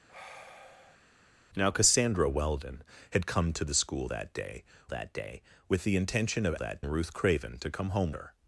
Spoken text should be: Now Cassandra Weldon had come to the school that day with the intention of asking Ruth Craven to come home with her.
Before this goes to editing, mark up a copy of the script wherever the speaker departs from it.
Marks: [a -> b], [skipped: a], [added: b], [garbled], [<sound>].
[sigh] Now Cassandra Weldon had come to the school that day [added: that day] with the intention of [asking -> that] Ruth Craven to come home [skipped: with] her.